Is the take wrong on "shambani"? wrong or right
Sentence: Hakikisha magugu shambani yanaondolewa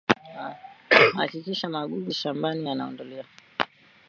right